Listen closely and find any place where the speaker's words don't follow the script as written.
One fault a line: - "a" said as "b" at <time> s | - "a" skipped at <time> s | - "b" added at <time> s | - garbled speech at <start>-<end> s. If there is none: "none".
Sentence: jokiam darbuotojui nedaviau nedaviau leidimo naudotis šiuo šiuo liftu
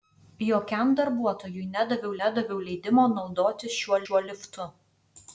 none